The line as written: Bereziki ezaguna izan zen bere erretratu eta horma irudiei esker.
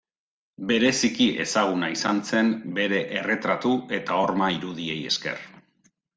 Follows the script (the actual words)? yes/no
yes